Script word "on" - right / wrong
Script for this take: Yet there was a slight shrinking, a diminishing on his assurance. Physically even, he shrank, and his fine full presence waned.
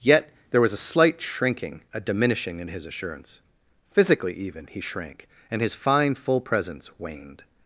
wrong